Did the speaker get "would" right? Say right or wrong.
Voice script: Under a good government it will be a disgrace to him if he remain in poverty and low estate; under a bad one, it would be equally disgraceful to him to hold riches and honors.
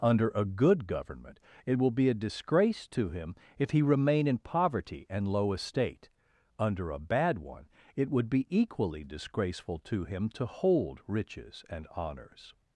right